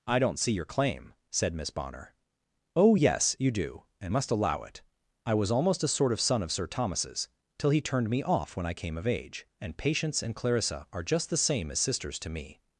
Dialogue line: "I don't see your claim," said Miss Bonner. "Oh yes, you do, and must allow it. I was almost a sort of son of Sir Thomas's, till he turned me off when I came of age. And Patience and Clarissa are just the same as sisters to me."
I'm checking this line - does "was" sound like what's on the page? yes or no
yes